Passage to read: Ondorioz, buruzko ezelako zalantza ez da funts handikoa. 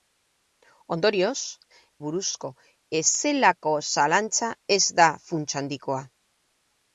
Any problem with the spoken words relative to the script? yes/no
no